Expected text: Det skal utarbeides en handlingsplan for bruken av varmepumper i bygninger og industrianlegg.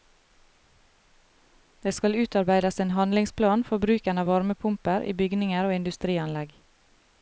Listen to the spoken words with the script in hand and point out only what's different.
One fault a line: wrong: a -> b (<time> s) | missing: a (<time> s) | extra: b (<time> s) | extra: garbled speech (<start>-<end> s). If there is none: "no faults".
no faults